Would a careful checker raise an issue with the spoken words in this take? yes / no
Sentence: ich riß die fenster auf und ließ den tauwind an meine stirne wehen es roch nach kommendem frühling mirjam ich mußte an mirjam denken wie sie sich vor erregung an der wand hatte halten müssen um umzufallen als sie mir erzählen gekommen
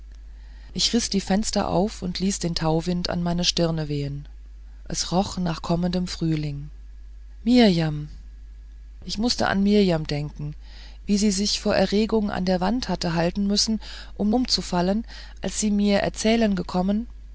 no